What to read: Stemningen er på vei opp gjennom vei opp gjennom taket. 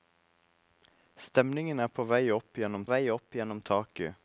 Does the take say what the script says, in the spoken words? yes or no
yes